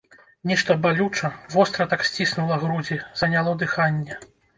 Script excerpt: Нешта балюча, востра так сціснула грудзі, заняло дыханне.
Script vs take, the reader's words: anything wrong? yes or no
no